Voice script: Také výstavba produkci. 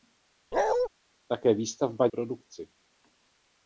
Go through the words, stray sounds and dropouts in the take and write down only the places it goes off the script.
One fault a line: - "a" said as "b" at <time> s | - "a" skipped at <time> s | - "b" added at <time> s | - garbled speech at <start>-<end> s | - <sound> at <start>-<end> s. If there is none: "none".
- bark at 0.5-0.9 s